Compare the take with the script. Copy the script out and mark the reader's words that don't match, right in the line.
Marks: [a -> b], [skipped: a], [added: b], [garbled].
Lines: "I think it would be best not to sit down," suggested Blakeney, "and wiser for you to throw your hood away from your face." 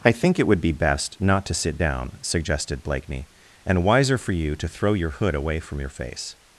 "I think it would be best not to sit down," suggested Blakeney, "and wiser for you to throw your hood away from your face."